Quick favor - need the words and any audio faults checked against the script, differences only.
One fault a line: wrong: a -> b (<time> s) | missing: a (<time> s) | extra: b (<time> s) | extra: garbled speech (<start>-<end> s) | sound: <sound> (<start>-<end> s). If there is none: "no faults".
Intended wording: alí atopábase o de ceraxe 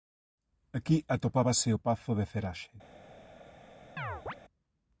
wrong: alí -> aquí (0.8 s)
extra: pazo (1.9 s)
sound: chirp (4.0-4.3 s)